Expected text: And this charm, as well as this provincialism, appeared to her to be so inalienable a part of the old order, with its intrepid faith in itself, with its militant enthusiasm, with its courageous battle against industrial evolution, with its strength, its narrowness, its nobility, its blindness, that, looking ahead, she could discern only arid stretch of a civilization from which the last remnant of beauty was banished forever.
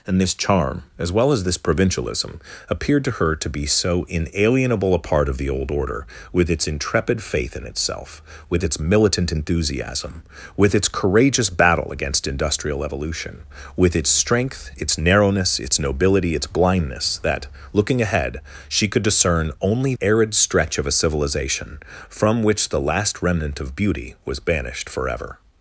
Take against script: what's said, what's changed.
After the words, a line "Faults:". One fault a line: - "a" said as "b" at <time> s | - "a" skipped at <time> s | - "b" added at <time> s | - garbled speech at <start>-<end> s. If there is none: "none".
And this charm, as well as this provincialism, appeared to her to be so inalienable a part of the old order, with its intrepid faith in itself, with its militant enthusiasm, with its courageous battle against industrial evolution, with its strength, its narrowness, its nobility, its blindness, that, looking ahead, she could discern only arid stretch of a civilization from which the last remnant of beauty was banished forever.
Faults:
none